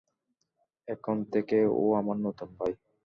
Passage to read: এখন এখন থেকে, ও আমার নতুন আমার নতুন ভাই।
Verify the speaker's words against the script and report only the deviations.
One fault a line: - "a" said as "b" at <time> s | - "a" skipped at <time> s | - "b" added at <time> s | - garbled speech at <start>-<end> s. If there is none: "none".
- "এখন" skipped at 1.2 s
- "আমার নতুন" skipped at 2.5 s